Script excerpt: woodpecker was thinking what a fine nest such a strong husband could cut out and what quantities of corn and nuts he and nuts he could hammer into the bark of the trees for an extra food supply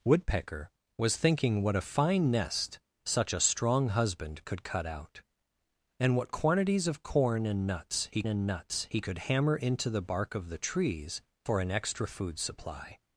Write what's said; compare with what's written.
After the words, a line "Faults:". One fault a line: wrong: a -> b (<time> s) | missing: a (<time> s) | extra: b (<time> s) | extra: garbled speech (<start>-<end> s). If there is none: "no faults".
woodpecker was thinking what a fine nest such a strong husband could cut out and what quantities of corn and nuts he and nuts he could hammer into the bark of the trees for an extra food supply
Faults:
no faults